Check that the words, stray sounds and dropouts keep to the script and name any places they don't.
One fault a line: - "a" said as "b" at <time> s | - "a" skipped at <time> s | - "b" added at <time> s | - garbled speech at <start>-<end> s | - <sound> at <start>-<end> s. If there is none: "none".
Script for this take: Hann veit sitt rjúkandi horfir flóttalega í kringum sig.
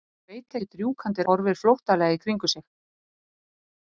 none